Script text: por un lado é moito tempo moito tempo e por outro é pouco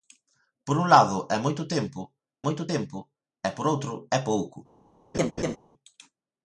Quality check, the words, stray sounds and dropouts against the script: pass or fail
fail